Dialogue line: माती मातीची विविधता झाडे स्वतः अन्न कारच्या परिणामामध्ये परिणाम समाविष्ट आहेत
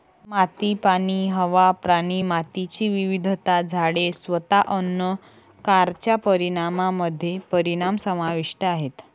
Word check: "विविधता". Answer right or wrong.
right